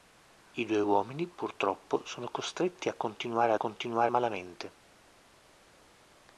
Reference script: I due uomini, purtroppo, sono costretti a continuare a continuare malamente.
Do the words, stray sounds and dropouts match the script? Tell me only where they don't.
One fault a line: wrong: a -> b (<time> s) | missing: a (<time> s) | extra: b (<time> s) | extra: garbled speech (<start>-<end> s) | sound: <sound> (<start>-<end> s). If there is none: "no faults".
no faults